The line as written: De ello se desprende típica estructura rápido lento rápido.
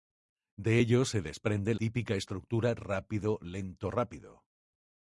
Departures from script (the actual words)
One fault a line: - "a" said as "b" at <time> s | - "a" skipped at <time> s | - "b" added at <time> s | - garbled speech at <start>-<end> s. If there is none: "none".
none